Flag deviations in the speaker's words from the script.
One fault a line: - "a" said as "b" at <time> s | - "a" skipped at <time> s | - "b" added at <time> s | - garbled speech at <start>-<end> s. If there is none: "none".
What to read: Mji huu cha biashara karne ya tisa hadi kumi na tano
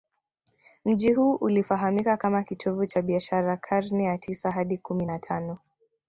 - "ulifahamika kama kitovu" added at 1.3 s